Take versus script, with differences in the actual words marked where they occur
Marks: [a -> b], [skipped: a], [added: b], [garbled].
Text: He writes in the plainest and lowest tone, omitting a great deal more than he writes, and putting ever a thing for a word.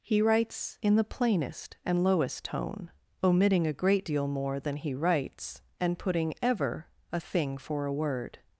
He writes in the plainest and lowest tone, omitting a great deal more than he writes, and putting ever a thing for a word.